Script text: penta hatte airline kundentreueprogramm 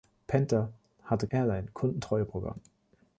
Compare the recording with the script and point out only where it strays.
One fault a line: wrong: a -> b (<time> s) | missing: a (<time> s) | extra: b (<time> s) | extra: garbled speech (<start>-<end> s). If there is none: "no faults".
no faults